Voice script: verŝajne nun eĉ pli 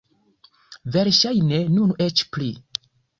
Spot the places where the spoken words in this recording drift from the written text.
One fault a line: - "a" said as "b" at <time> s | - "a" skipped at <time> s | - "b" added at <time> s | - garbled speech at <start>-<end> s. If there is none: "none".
none